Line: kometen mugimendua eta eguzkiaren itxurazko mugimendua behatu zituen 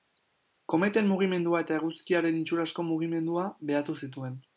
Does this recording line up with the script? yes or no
yes